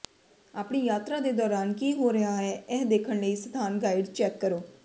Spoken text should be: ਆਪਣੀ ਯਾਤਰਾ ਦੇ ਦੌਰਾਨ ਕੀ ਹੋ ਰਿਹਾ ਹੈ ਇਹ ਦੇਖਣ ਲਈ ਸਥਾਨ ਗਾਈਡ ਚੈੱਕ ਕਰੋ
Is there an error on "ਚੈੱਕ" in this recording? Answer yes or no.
no